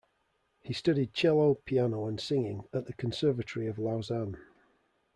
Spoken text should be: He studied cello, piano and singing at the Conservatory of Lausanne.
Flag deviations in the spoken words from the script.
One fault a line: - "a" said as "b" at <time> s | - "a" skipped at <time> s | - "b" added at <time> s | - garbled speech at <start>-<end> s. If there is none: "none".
none